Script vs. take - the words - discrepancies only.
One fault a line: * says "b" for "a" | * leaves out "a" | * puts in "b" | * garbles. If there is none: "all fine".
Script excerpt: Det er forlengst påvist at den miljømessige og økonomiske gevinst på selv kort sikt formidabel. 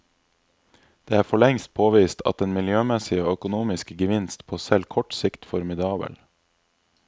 all fine